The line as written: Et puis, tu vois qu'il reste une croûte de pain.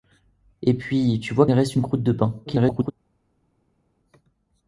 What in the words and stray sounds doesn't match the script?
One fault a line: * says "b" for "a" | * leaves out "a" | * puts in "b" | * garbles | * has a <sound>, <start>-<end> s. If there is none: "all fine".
* leaves out "qu'il"
* garbles